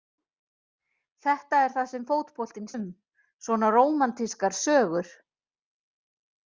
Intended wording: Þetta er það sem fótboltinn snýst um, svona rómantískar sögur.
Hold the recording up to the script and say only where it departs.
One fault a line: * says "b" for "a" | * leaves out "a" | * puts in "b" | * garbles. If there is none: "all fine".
* leaves out "snýst"